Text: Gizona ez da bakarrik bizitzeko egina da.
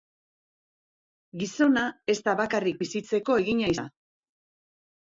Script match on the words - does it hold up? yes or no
yes